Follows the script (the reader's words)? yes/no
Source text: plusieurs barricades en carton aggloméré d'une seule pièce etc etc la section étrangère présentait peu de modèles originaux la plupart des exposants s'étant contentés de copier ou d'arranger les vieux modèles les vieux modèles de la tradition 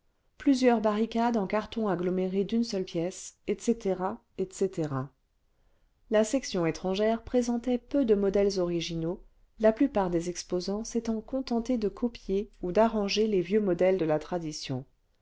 no